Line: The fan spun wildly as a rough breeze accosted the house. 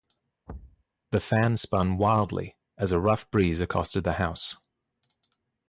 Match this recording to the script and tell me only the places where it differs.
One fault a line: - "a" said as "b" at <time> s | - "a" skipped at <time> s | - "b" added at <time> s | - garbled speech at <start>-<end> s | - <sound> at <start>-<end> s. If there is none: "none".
- thud at 0.5-0.8 s